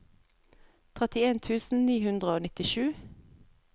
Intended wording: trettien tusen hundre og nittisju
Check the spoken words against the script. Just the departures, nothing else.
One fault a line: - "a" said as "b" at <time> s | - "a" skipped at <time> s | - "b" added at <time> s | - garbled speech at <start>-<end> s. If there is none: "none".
- "ni" added at 1.9 s